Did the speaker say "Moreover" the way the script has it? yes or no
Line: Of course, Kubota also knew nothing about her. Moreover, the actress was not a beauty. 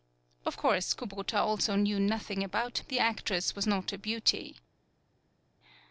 no